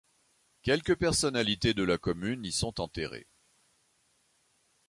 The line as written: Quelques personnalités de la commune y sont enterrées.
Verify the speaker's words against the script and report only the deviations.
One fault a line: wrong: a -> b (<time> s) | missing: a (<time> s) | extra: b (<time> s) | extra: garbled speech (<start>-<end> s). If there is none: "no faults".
no faults